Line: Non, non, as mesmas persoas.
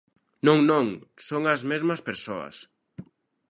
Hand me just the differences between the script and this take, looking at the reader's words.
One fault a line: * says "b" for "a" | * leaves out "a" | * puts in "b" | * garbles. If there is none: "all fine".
* puts in "son"